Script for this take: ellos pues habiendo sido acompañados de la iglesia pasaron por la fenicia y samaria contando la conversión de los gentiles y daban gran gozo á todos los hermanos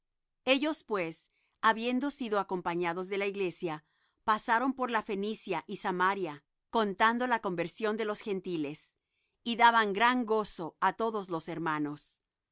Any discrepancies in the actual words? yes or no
no